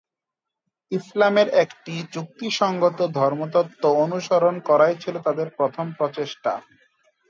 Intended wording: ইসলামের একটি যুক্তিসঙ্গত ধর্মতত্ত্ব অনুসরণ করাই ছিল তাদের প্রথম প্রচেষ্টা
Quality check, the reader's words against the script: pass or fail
pass